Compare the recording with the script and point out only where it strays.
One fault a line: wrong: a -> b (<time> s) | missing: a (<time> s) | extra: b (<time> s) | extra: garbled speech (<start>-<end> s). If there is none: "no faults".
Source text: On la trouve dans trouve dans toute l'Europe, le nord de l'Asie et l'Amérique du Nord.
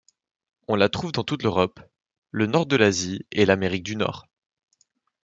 missing: trouve dans (1.2 s)